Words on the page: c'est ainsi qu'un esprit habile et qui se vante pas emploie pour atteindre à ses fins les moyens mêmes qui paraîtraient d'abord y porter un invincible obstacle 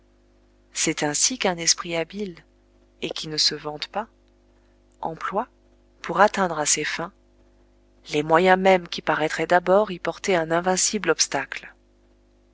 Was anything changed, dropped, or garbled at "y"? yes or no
no